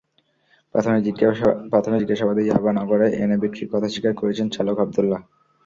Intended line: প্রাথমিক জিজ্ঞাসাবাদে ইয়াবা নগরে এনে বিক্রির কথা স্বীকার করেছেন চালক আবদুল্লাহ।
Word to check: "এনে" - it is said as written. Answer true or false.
true